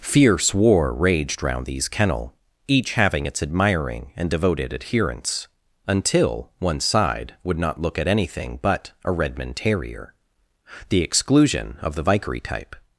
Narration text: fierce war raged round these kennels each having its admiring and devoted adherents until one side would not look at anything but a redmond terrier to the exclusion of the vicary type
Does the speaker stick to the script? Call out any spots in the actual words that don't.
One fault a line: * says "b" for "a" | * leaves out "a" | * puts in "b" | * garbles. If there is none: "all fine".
* says "kennel" for "kennels"
* leaves out "to"